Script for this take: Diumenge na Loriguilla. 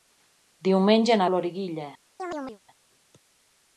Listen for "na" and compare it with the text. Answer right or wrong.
right